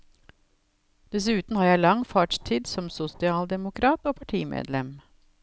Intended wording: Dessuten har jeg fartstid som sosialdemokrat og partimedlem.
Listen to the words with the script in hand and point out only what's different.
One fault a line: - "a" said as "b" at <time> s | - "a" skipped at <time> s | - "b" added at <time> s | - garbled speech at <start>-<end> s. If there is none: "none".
- "lang" added at 1.8 s